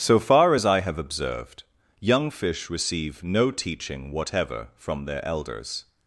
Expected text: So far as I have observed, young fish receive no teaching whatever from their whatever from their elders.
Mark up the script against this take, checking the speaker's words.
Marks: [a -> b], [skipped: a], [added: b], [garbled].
So far as I have observed, young fish receive no teaching whatever from their [skipped: whatever from their] elders.